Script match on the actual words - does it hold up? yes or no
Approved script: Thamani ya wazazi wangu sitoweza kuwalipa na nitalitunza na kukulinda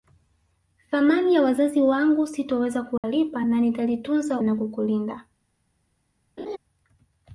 yes